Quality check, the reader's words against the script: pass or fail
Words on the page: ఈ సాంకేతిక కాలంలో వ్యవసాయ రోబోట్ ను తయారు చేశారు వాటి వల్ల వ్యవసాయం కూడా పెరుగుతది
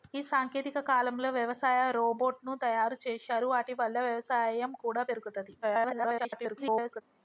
fail